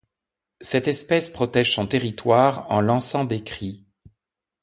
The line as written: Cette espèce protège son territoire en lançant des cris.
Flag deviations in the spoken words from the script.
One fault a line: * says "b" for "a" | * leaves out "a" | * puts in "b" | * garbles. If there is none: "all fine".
all fine